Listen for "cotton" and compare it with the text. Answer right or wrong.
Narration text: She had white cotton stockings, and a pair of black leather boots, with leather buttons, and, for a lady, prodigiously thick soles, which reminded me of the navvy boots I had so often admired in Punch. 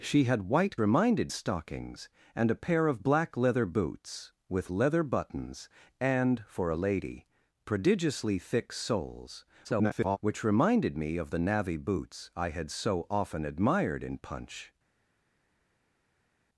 wrong